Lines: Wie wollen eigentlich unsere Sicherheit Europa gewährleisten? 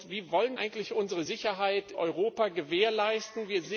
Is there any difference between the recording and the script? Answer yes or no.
no